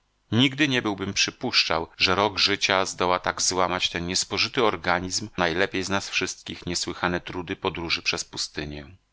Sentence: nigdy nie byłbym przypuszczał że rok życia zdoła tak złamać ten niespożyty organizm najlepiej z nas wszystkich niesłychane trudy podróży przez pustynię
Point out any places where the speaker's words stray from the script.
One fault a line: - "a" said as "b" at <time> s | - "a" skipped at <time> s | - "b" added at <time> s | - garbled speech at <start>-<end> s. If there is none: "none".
none